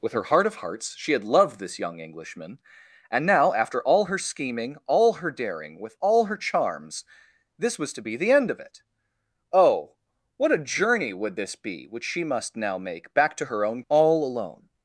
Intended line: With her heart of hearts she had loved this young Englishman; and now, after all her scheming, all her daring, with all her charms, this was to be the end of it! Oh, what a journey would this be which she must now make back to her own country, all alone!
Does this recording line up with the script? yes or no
no